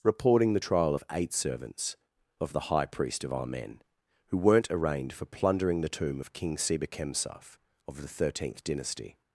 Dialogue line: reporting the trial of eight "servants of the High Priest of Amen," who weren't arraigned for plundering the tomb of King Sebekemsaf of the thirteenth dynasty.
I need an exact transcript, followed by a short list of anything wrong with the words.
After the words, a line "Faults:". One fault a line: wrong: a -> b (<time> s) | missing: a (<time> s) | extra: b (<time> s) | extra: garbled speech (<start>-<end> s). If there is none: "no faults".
reporting the trial of eight "servants of the High Priest of Amen," who weren't arraigned for plundering the tomb of King Sebekemsaf of the thirteenth dynasty.
Faults:
no faults